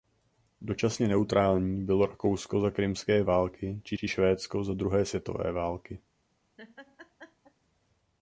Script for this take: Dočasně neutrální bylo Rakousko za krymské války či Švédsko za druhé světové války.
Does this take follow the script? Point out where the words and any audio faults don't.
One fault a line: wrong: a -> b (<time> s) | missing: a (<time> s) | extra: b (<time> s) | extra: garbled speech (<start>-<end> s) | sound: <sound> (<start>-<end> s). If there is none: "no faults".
extra: či (3.9 s)
sound: laugh (6.6-7.5 s)